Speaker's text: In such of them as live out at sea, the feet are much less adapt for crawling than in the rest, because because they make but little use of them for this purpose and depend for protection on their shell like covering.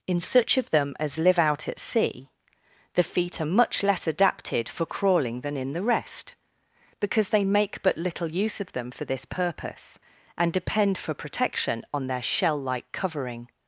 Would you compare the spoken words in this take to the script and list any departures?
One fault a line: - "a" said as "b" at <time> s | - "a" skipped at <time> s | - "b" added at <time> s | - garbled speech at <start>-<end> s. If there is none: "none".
- "adapt" said as "adapted" at 4.1 s
- "because" skipped at 7.3 s